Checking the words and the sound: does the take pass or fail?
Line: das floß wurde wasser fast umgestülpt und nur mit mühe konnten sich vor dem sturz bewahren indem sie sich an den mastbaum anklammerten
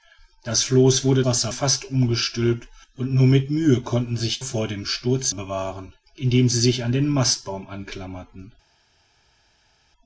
pass